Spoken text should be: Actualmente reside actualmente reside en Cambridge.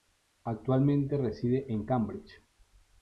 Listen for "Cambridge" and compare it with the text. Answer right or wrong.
right